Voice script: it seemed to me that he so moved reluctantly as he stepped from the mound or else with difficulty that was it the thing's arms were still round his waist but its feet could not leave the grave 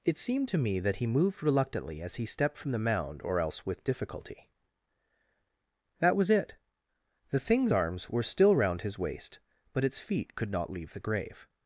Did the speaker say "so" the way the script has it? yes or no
no